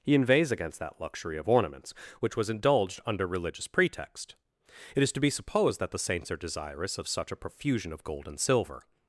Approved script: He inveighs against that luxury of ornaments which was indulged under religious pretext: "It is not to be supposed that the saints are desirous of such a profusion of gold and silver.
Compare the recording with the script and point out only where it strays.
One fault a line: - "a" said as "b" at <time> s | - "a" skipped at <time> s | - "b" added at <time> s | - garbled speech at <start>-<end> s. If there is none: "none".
- "not" skipped at 5.1 s